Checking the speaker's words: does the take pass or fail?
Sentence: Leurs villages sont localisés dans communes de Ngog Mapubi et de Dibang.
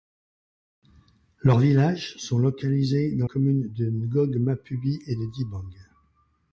pass